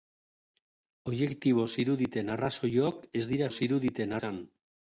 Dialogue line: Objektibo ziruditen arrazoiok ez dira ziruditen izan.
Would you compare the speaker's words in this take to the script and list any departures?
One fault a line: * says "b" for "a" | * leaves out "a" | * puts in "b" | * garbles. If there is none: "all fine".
all fine